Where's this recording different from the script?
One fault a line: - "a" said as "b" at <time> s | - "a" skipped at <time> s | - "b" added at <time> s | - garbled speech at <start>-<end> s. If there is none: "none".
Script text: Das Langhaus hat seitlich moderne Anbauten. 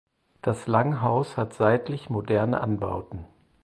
none